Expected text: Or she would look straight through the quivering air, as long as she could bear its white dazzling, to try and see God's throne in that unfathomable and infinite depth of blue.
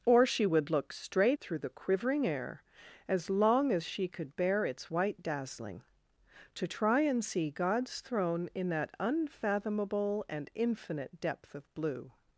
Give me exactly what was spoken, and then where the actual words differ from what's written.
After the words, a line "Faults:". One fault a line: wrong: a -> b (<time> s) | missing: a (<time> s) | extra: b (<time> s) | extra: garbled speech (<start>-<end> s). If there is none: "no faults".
Or she would look straight through the quivering air, as long as she could bear its white dazzling, to try and see God's throne in that unfathomable and infinite depth of blue.
Faults:
no faults